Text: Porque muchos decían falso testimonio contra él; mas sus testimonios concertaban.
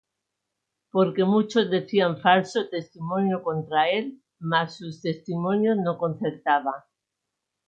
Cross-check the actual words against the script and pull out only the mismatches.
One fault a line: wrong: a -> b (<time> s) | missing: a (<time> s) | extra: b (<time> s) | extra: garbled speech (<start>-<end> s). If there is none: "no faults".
extra: no (5.8 s)